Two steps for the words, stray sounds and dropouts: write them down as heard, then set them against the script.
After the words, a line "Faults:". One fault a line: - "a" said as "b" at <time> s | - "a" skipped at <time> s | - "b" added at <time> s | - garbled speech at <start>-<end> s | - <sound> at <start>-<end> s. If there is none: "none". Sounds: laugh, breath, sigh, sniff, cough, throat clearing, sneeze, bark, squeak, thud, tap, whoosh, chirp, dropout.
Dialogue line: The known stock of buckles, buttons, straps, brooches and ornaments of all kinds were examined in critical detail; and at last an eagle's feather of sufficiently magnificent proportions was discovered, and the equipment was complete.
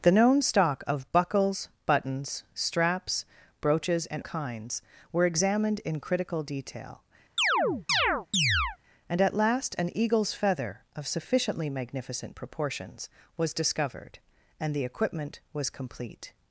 The known stock of buckles, buttons, straps, brooches and kinds were examined in critical detail; and at last an eagle's feather of sufficiently magnificent proportions was discovered, and the equipment was complete.
Faults:
- "ornaments of all" skipped at 4.2 s
- chirp at 7.4-8.8 s